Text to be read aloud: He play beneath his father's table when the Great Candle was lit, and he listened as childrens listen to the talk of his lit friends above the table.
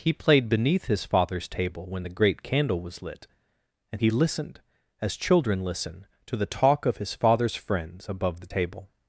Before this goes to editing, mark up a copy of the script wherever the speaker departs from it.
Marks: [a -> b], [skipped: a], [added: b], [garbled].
He [play -> played] beneath his father's table when the Great Candle was lit, and he listened as [childrens -> children] listen to the talk of his [lit -> father's] friends above the table.